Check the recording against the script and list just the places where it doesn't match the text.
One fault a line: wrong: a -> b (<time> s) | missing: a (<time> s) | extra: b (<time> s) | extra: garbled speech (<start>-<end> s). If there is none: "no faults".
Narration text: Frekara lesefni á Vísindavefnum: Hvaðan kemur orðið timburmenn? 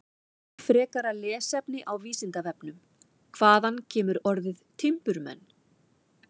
no faults